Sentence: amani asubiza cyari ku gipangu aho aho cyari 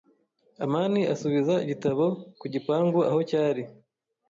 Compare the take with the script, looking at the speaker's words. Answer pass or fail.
fail